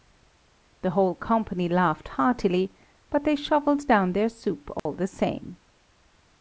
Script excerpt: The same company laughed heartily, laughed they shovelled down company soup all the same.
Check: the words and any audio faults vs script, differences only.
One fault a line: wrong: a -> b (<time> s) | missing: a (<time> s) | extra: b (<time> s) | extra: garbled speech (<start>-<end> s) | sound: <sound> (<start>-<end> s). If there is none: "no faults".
wrong: same -> whole (0.9 s)
wrong: laughed -> but (3.1 s)
wrong: company -> their (4.1 s)
sound: dropout (4.8-4.9 s)